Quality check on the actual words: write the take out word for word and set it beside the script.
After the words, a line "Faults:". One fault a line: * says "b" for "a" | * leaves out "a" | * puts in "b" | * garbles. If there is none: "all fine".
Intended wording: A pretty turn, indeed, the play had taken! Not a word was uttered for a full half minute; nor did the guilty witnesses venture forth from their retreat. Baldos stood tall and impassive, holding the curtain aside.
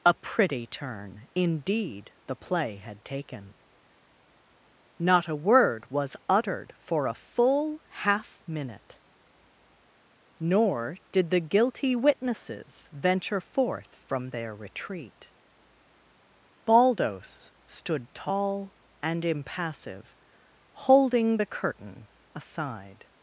A pretty turn, indeed, the play had taken! Not a word was uttered for a full half minute; nor did the guilty witnesses venture forth from their retreat. Baldos stood tall and impassive, holding the curtain aside.
Faults:
all fine